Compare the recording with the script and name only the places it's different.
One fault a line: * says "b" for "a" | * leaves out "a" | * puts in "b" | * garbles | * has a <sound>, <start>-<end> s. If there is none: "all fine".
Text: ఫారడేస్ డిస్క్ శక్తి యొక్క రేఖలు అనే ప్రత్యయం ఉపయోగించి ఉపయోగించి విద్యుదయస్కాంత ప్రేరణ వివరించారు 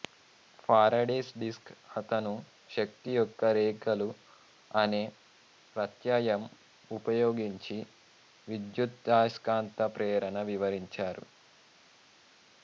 * puts in "అతను"
* leaves out "ఉపయోగించి"